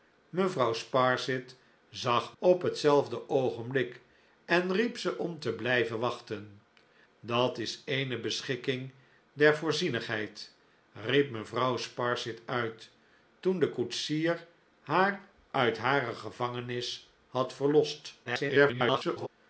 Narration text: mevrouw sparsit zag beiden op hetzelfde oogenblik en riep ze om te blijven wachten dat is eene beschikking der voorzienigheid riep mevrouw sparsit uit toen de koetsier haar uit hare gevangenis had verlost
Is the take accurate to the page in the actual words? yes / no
no